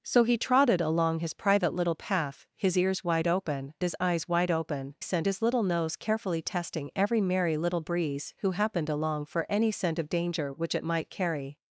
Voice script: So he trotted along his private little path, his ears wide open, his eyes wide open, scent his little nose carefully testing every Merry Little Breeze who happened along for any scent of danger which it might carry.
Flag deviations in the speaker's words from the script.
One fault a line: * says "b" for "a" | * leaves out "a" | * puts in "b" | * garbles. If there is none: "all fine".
all fine